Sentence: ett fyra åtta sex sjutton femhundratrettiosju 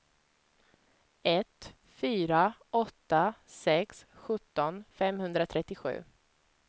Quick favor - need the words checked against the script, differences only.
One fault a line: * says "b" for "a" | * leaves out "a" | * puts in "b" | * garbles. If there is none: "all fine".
all fine